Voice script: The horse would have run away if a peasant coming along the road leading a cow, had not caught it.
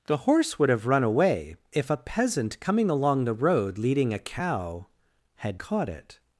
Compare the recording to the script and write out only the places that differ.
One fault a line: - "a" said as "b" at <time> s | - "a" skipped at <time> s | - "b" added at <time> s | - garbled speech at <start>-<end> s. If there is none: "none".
- "not" skipped at 5.6 s